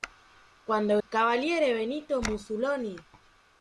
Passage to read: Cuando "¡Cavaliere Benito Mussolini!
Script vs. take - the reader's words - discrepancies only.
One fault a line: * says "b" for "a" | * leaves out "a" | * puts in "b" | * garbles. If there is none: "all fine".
all fine